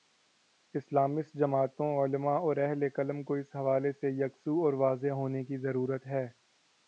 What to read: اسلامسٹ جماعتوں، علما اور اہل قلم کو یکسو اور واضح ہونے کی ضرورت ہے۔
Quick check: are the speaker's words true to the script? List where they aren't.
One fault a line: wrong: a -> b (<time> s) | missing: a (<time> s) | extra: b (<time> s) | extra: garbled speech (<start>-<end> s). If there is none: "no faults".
extra: اس حوالے سے (3.3 s)